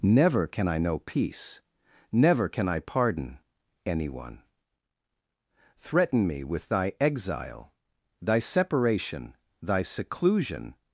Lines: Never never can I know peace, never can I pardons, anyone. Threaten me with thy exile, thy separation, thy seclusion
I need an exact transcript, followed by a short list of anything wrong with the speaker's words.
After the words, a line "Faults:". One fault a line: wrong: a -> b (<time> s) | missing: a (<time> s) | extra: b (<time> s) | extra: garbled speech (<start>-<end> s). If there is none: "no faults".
Never can I know peace, never can I pardon, anyone. Threaten me with thy exile, thy separation, thy seclusion
Faults:
missing: never (0.5 s)
wrong: pardons -> pardon (2.8 s)